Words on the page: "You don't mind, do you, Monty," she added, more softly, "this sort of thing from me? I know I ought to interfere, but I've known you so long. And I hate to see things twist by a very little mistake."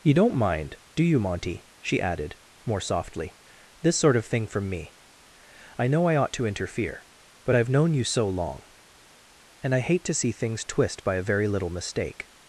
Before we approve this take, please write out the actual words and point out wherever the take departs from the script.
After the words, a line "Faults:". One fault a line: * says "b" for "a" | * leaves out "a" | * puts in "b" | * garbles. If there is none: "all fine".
"You don't mind, do you, Monty," she added, more softly, "this sort of thing from me? I know I ought to interfere, but I've known you so long. And I hate to see things twist by a very little mistake."
Faults:
all fine